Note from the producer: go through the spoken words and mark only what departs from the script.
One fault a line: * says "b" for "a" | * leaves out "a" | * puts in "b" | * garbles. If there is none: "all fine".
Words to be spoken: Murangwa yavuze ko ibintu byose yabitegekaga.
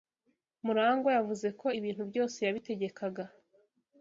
all fine